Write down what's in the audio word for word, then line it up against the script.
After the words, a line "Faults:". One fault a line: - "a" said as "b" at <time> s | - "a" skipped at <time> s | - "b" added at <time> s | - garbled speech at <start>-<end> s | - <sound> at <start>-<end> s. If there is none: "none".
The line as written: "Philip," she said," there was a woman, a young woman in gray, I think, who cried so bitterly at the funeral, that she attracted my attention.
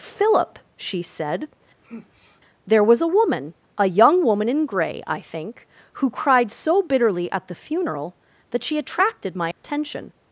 "Philip," she said," there was a woman, a young woman in gray, I think, who cried so bitterly at the funeral, that she attracted my attention.
Faults:
- sigh at 1.8-2.4 s
- dropout at 9.5-9.6 s